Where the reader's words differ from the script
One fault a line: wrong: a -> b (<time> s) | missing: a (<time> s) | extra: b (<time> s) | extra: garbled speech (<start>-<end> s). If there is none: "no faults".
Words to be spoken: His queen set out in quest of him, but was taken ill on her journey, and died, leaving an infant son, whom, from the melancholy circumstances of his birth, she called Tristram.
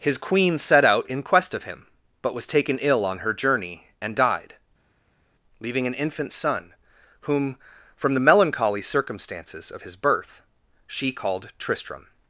no faults